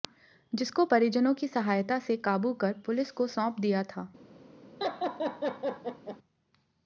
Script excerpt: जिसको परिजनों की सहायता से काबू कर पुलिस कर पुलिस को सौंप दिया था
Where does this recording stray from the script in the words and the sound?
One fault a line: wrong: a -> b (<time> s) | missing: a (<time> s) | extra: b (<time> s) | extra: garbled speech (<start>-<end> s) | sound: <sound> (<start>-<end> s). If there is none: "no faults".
missing: कर पुलिस (3.1 s)
sound: laugh (4.8-6.2 s)